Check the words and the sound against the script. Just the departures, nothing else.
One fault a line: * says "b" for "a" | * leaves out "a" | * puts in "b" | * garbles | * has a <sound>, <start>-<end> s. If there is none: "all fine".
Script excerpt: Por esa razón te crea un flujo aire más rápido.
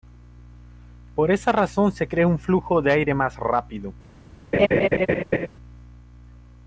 * says "se" for "te"
* puts in "de"
* has a laugh, 4.5-5.5 s